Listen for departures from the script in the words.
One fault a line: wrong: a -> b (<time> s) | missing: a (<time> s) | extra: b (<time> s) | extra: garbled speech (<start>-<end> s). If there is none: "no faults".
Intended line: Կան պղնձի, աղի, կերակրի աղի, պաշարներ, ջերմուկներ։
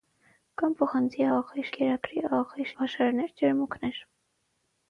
no faults